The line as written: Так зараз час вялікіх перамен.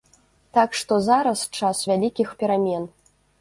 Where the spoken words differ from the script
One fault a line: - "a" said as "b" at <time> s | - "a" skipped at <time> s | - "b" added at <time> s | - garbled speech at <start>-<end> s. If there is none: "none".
- "што" added at 0.8 s